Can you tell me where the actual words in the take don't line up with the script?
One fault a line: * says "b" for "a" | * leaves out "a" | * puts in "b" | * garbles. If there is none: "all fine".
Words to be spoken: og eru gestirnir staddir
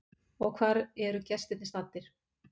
* puts in "hvar"